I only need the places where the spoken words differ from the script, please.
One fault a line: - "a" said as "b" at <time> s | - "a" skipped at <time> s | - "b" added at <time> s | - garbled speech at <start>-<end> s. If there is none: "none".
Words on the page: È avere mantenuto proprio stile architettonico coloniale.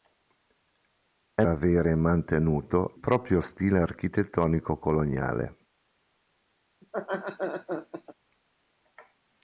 none